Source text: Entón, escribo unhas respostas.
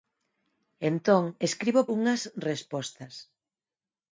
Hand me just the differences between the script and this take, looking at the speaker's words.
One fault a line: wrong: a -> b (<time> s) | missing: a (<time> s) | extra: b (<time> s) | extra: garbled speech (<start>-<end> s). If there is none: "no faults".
no faults